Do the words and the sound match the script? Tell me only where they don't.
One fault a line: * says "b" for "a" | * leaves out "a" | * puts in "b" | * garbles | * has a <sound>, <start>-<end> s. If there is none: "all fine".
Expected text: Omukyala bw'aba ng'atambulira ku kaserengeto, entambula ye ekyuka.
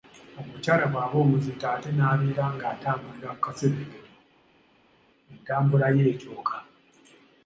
* puts in "omuzito ate n'abeera"